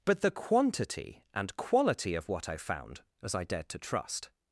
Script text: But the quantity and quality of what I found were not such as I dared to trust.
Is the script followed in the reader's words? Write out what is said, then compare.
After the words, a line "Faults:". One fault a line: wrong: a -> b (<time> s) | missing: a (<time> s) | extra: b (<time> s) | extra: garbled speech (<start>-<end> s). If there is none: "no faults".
But the quantity and quality of what I found as I dared to trust.
Faults:
missing: were not such (3.0 s)